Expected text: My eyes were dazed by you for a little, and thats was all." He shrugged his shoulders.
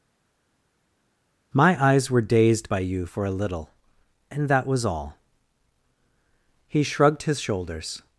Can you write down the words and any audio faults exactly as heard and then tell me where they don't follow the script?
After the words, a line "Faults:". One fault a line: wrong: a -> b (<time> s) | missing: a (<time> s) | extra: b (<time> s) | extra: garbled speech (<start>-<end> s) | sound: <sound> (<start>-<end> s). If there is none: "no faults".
My eyes were dazed by you for a little, and that was all." He shrugged his shoulders.
Faults:
wrong: thats -> that (4.5 s)